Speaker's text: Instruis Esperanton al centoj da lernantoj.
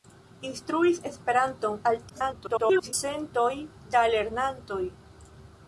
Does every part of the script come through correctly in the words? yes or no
no